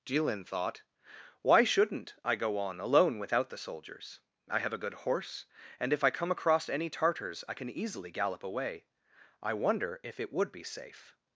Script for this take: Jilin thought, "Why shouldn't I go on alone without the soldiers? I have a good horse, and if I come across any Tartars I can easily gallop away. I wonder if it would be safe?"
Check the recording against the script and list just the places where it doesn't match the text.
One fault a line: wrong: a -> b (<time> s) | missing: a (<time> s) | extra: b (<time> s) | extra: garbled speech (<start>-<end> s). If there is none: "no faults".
no faults